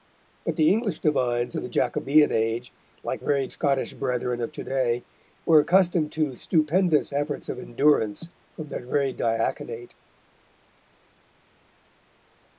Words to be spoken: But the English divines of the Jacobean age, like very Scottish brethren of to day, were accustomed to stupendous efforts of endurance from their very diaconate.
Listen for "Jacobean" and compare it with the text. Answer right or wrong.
right